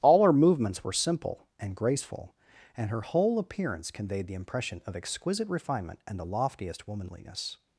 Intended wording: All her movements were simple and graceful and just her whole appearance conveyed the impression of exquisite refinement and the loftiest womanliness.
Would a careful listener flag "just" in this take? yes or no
yes